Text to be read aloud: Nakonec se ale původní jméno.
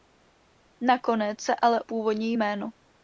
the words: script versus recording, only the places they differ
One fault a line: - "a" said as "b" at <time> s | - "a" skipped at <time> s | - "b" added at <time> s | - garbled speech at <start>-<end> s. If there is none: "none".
none